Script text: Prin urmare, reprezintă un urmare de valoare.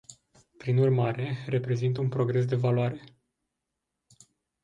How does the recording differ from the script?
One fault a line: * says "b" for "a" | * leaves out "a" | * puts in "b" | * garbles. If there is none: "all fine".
* says "progres" for "urmare"